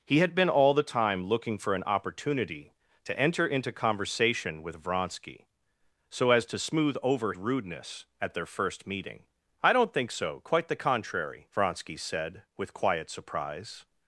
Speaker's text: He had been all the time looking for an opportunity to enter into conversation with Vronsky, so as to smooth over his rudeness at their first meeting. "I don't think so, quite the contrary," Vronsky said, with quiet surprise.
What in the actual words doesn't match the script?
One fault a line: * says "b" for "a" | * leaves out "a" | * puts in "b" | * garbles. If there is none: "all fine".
* leaves out "his"